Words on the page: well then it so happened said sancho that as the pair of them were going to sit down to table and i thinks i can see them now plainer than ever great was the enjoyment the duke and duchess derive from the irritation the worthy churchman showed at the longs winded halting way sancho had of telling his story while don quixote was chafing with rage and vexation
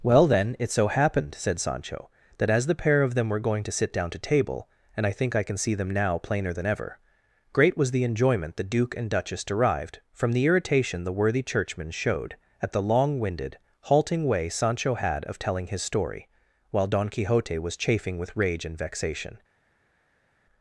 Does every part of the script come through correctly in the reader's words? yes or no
no